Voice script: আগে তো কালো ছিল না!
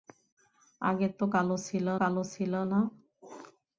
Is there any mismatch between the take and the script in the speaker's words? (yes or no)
yes